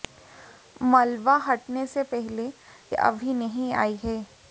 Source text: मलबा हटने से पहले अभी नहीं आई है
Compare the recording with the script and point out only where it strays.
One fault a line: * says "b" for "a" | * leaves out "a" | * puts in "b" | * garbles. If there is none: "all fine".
all fine